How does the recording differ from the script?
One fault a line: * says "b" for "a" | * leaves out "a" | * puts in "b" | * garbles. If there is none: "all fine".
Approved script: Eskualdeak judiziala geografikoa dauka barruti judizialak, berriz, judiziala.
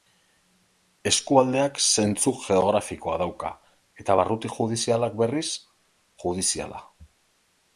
* says "zentzu" for "judiziala"
* puts in "eta"